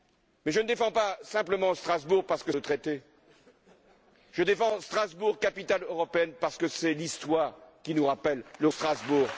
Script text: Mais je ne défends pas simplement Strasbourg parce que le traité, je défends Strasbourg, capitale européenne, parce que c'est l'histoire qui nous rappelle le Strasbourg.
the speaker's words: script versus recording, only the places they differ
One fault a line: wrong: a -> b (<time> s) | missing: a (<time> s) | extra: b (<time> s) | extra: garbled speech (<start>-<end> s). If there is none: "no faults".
no faults